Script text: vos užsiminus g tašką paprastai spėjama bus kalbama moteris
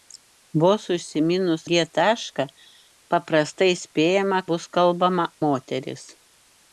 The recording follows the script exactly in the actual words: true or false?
true